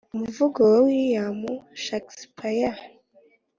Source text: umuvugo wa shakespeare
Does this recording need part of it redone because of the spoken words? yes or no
yes